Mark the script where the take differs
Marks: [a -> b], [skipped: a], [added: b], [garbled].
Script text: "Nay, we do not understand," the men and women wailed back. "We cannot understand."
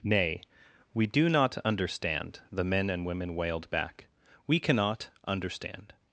"Nay, we do not understand," the men and women wailed back. "We cannot understand."